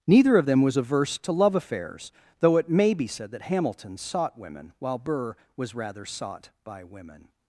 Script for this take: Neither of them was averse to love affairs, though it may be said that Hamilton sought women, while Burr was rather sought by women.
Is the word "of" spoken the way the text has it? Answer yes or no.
yes